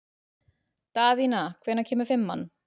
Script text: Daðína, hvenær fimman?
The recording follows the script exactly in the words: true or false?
false